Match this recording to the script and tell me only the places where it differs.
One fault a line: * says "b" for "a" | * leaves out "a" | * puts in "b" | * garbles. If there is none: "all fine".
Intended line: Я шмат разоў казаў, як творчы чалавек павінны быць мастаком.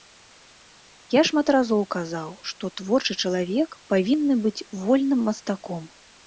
* says "што" for "як"
* puts in "вольным"